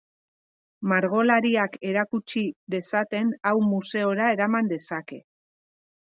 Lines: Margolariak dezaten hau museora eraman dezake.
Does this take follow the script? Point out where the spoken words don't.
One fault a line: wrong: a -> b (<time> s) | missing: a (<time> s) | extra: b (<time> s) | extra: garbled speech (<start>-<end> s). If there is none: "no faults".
extra: erakutsi (1.9 s)